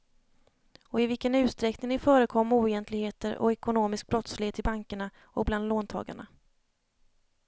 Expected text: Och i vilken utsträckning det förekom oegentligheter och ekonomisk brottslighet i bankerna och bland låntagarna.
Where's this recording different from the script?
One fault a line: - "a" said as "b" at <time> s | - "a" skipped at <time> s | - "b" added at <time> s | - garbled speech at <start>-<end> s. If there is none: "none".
none